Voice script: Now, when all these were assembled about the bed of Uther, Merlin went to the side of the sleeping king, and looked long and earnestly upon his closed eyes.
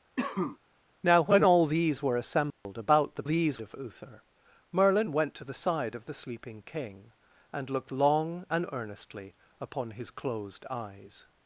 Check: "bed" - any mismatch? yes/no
yes